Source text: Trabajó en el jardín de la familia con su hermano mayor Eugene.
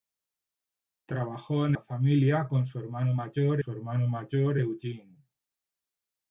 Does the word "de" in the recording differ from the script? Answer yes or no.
yes